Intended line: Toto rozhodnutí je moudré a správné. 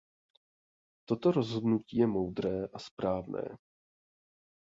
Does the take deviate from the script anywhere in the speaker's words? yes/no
no